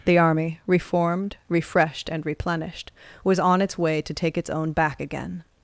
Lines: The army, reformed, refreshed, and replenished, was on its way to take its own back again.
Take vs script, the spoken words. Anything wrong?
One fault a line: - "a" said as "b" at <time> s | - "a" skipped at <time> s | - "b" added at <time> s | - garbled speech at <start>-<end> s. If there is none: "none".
none